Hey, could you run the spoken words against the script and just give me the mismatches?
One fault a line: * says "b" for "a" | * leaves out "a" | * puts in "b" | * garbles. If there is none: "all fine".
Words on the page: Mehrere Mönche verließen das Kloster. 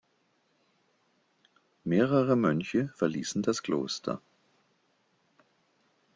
all fine